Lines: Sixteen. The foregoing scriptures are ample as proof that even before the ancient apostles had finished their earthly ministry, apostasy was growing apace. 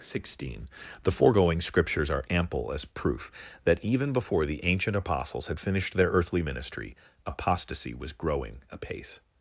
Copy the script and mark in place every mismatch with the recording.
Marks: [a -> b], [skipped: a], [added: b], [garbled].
Sixteen. The foregoing scriptures are ample as proof that even before the ancient apostles had finished their earthly ministry, apostasy was growing apace.